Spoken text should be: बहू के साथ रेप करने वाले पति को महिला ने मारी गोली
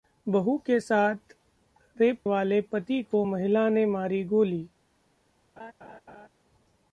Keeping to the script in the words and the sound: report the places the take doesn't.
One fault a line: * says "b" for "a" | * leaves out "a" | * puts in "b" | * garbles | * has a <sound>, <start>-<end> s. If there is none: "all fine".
* leaves out "करने"
* has a laugh, 5.6-6.3 s